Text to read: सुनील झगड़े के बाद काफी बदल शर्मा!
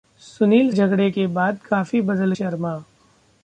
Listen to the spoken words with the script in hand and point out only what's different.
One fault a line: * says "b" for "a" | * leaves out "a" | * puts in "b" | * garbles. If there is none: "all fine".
all fine